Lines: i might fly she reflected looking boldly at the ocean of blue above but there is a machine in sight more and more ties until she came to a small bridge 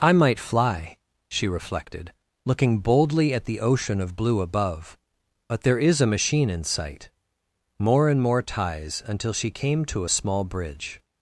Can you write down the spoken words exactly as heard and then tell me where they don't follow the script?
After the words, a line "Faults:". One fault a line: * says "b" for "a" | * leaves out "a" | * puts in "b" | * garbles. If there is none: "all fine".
i might fly she reflected looking boldly at the ocean of blue above but there is a machine in sight more and more ties until she came to a small bridge
Faults:
all fine